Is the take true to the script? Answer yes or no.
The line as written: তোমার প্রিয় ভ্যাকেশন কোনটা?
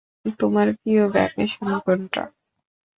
yes